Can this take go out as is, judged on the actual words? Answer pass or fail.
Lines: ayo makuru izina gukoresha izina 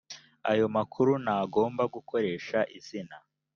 fail